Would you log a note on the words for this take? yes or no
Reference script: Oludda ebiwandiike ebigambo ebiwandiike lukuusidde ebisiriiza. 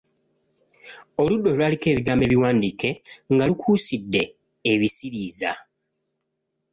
yes